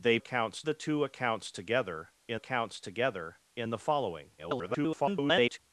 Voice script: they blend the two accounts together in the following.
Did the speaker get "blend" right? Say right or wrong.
wrong